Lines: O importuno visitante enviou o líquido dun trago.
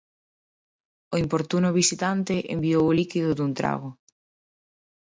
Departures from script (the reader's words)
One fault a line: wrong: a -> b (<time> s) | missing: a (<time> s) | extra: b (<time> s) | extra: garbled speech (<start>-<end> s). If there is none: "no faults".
no faults